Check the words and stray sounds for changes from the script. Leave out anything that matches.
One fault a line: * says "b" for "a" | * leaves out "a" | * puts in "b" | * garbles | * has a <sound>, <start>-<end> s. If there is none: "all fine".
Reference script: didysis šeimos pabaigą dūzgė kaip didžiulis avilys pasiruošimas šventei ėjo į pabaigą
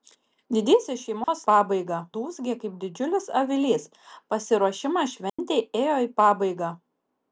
* has a dropout, 1.2-1.3 s
* has a dropout, 5.3-5.4 s